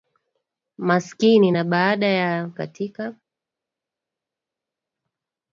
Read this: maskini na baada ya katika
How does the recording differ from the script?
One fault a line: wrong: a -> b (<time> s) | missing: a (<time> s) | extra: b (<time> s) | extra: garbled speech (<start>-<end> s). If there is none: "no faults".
no faults